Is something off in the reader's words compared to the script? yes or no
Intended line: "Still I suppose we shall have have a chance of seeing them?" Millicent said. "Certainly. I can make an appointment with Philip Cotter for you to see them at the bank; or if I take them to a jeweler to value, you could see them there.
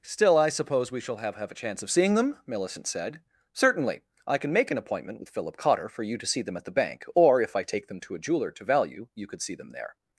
no